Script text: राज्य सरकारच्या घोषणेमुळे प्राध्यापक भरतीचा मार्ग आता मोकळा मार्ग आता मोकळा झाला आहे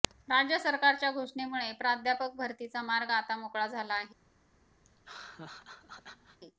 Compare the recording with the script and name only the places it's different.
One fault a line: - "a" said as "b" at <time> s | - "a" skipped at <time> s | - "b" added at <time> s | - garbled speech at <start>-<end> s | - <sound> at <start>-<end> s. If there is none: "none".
- "मार्ग आता मोकळा" skipped at 3.7 s
- laugh at 4.9-6.4 s